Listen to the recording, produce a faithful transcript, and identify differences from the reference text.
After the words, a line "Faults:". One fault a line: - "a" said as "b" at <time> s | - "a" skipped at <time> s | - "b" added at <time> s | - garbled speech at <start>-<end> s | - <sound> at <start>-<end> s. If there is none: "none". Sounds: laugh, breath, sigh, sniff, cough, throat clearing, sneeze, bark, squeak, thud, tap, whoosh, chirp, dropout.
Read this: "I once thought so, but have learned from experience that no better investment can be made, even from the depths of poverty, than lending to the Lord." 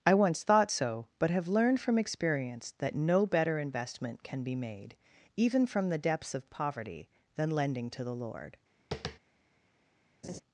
"I once thought so, but have learned from experience that no better investment can be made, even from the depths of poverty, than lending to the Lord."
Faults:
- tap at 8.9-9.2 s
- laugh at 10.2-10.4 s